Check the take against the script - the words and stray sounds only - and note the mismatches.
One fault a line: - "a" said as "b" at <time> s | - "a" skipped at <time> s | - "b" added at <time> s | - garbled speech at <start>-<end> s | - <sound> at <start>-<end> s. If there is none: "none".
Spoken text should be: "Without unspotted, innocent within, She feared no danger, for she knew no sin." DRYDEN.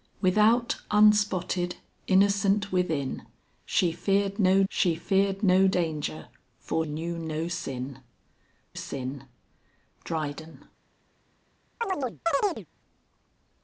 - "She feared no" added at 4.7 s
- "she" skipped at 6.8 s
- "sin" added at 8.7 s
- chirp at 11.8-12.7 s